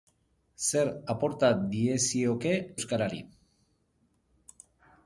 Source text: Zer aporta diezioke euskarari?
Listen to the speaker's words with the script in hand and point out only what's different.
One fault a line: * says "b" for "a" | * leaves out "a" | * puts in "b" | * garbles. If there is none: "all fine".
all fine